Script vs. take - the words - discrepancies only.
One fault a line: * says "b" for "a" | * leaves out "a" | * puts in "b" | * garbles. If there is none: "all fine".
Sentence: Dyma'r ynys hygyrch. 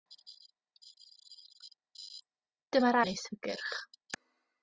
all fine